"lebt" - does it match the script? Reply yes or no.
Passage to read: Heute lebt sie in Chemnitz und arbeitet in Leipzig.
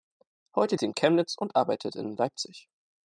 no